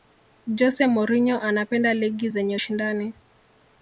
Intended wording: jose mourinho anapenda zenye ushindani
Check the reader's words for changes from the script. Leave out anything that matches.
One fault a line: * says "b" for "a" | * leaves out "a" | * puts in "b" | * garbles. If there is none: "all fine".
* puts in "ligi"